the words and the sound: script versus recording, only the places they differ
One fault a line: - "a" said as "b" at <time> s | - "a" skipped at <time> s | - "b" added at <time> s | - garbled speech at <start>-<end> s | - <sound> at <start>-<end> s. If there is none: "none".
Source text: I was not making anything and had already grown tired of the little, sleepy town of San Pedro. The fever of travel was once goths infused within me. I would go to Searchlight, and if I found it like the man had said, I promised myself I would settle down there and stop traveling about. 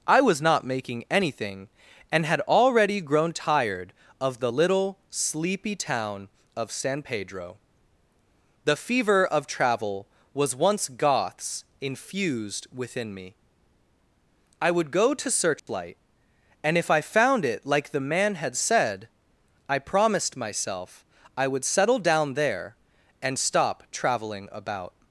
- dropout at 15.6-15.7 s